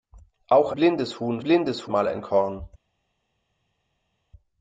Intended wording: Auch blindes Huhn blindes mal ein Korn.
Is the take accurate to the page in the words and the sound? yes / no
yes